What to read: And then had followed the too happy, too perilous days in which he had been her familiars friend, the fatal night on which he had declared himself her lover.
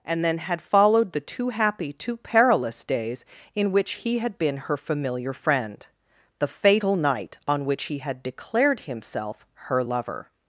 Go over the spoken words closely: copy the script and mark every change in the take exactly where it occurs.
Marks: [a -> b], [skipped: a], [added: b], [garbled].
And then had followed the too happy, too perilous days in which he had been her [familiars -> familiar] friend, the fatal night on which he had declared himself her lover.